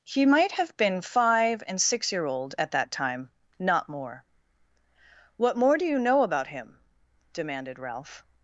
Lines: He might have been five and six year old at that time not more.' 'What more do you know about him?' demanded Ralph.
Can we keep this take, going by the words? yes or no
yes